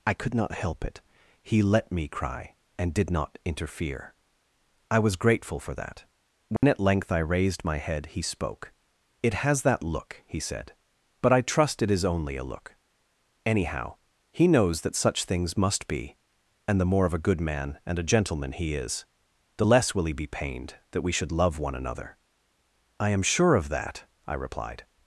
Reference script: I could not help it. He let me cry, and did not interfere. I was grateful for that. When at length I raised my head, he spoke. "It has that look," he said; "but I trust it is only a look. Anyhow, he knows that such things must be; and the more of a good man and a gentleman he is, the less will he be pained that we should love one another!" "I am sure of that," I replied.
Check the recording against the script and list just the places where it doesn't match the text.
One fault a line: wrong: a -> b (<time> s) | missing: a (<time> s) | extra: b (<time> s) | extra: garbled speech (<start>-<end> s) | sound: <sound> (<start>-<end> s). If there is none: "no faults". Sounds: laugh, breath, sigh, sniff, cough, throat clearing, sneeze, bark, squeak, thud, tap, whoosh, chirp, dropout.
sound: dropout (6.6-6.6 s)